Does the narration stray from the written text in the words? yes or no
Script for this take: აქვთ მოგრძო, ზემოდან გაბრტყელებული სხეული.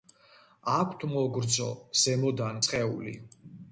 yes